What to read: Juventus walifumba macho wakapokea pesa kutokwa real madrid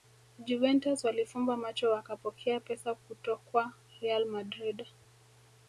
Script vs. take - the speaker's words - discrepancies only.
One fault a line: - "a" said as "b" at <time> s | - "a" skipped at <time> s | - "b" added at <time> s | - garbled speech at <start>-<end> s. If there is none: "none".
none